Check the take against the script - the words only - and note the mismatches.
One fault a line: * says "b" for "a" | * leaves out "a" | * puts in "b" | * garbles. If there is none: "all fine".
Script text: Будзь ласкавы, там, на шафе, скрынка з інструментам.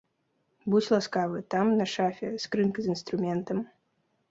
all fine